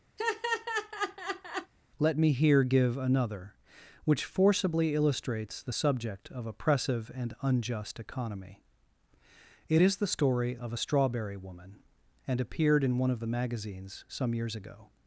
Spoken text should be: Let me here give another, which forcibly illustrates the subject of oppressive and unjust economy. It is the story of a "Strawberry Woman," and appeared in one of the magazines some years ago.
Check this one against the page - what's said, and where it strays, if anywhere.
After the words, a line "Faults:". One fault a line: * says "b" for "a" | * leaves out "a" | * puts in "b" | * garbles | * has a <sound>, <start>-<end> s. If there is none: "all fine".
Let me here give another, which forcibly illustrates the subject of oppressive and unjust economy. It is the story of a "Strawberry Woman," and appeared in one of the magazines some years ago.
Faults:
* has a laugh, 0.2-1.7 s